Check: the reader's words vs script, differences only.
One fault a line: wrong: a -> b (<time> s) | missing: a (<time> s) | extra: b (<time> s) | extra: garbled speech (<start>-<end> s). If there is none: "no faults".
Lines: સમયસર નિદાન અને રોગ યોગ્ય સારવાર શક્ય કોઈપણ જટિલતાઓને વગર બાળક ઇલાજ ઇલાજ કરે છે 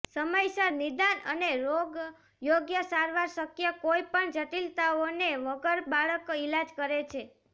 missing: ઇલાજ (6.8 s)